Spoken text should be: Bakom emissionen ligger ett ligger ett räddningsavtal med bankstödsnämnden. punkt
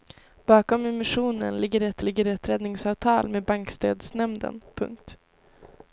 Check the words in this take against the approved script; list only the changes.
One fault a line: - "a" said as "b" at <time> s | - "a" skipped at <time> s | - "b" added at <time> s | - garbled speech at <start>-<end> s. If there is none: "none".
none